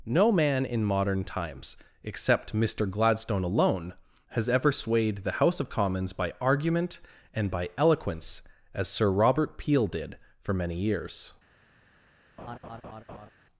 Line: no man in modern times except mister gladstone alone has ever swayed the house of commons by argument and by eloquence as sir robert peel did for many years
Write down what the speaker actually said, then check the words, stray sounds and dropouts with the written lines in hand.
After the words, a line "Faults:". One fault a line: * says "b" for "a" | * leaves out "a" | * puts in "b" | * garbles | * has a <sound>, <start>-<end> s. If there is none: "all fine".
no man in modern times except mister gladstone alone has ever swayed the house of commons by argument and by eloquence as sir robert peel did for many years
Faults:
* has a laugh, 12.4-13.3 s